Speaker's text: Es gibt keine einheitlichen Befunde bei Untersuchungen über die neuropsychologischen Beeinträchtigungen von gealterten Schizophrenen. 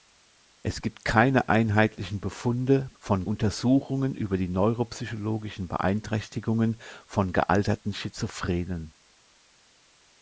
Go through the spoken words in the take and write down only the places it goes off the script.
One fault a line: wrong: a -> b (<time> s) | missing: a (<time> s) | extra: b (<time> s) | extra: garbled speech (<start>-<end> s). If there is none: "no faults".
wrong: bei -> von (3.0 s)